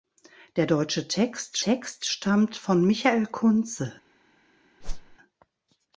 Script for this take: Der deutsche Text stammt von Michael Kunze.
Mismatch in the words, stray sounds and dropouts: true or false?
true